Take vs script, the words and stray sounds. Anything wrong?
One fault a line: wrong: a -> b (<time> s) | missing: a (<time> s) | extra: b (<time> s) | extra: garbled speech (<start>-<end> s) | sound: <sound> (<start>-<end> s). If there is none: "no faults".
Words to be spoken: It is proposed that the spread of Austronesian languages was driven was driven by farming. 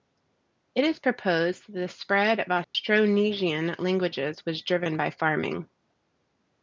sound: dropout (2.6-2.7 s)
missing: was driven (5.0 s)